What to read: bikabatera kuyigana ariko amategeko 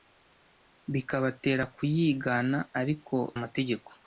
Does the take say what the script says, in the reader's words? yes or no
yes